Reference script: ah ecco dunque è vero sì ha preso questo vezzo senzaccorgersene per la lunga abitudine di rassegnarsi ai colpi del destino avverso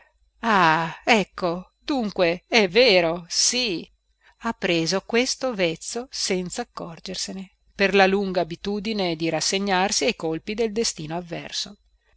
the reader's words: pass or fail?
pass